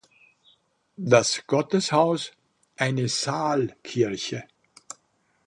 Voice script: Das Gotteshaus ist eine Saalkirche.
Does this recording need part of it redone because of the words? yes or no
yes